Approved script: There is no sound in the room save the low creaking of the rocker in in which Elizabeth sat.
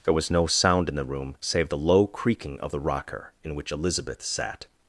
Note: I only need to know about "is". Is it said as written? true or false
false